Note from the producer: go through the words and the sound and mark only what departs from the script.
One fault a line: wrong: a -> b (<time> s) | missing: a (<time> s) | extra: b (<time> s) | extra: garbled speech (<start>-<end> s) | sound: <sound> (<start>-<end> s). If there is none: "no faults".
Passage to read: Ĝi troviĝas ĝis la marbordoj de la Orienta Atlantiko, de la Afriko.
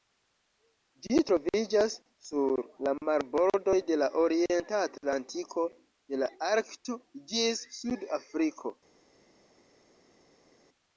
wrong: ĝis -> sur (2.3 s)
extra: Arkto ĝis Sud (6.5 s)